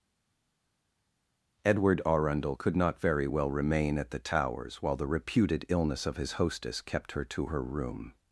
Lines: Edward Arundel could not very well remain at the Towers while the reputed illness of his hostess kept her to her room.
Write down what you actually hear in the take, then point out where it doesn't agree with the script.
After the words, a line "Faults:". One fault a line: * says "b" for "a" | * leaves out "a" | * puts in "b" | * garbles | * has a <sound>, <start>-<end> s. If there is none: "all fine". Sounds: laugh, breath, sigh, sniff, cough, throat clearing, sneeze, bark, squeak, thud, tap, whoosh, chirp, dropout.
Edward Arundel could not very well remain at the Towers while the reputed illness of his hostess kept her to her room.
Faults:
all fine